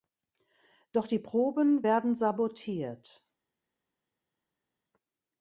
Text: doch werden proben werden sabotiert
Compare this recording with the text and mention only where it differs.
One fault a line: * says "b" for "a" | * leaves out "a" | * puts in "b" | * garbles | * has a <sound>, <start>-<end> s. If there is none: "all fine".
* says "die" for "werden"